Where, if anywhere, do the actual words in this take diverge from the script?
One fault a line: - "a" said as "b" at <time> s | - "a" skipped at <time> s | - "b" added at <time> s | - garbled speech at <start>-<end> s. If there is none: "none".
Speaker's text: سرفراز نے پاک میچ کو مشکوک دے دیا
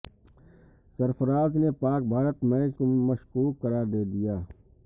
- "بھارت" added at 2.1 s
- "قرار" added at 3.6 s